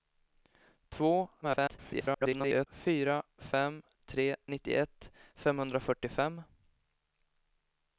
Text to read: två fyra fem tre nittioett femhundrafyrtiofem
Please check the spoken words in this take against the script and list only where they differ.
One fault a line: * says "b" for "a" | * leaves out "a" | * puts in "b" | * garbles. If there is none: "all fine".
* garbles